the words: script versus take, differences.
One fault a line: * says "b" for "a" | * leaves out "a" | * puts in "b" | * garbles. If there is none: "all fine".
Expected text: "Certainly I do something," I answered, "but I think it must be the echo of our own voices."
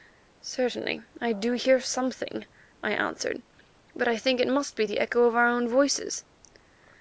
* puts in "hear"